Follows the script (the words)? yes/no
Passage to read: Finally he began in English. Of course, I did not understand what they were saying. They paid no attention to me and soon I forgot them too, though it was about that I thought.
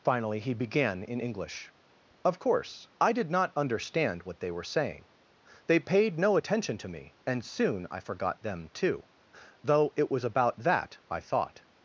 yes